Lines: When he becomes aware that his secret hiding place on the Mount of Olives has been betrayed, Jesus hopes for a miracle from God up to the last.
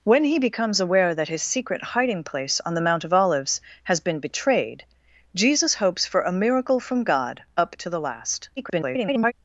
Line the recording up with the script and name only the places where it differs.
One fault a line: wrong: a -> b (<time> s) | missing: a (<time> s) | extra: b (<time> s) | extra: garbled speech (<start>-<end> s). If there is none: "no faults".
extra: garbled speech (8.6-9.3 s)